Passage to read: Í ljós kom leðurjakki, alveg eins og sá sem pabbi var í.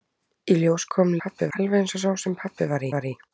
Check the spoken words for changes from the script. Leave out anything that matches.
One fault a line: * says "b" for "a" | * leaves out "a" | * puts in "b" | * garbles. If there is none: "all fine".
* says "pabbi" for "leðurjakki"
* puts in "var"